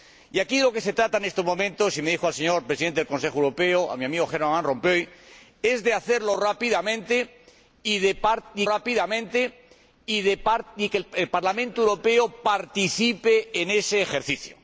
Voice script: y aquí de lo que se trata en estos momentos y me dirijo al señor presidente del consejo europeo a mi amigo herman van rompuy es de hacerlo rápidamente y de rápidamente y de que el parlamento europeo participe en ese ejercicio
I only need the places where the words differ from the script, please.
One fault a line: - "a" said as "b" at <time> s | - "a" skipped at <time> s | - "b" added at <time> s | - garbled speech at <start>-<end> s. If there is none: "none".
none